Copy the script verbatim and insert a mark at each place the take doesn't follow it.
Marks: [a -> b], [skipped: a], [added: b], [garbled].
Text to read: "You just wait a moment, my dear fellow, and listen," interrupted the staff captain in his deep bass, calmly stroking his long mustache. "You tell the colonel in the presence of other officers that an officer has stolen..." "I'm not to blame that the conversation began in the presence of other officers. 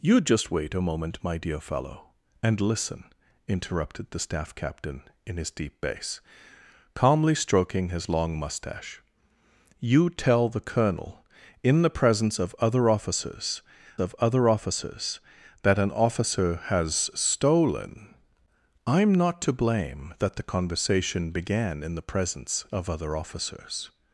"You just wait a moment, my dear fellow, and listen," interrupted the staff captain in his deep bass, calmly stroking his long mustache. "You tell the colonel in the presence of other officers [added: of other officers] that an officer has stolen..." "I'm not to blame that the conversation began in the presence of other officers.